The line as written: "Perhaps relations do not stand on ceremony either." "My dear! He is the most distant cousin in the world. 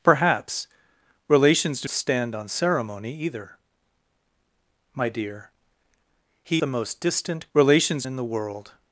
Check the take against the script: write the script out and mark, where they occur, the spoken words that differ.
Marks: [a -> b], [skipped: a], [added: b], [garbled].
"Perhaps relations do [skipped: not] stand on ceremony either." "My dear! He [skipped: is] the most distant [cousin -> relations] in the world.